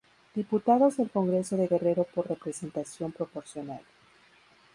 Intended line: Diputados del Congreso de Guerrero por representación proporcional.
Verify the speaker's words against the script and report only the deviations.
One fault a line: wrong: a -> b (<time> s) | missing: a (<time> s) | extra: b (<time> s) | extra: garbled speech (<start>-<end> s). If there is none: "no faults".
no faults